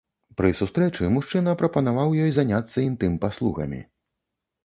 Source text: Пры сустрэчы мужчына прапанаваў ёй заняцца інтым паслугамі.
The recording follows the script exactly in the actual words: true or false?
true